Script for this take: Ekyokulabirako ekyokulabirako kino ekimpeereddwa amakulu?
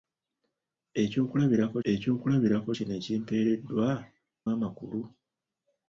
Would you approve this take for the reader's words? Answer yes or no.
yes